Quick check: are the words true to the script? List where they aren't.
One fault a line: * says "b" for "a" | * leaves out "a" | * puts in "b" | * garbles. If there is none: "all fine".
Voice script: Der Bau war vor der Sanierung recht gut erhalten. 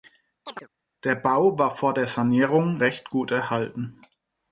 all fine